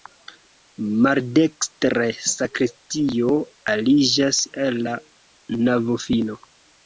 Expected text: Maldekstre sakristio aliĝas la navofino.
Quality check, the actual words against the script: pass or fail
fail